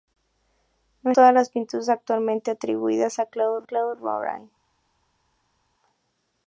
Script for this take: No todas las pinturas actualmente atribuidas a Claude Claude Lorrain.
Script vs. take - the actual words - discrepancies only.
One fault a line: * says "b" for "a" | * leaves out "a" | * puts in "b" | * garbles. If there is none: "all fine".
all fine